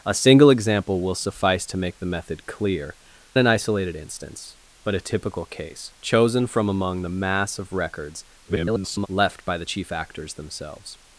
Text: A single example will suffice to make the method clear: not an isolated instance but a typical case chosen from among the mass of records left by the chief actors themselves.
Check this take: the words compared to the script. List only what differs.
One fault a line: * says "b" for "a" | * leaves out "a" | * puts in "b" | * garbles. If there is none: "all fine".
* leaves out "not"
* garbles